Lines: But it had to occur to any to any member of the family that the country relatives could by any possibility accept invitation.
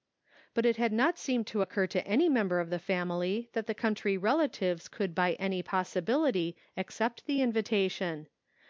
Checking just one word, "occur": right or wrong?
wrong